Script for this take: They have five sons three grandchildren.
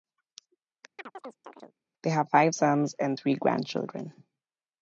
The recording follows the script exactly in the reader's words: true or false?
false